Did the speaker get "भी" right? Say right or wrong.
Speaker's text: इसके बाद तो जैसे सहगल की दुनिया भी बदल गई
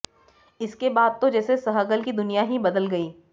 wrong